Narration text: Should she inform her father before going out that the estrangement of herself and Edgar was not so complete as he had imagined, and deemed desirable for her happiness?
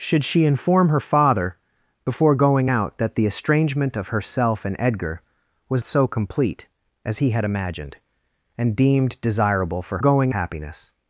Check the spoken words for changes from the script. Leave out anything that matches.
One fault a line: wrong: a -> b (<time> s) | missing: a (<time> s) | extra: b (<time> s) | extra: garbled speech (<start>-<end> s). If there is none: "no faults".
missing: not (5.8 s)
wrong: her -> going (10.0 s)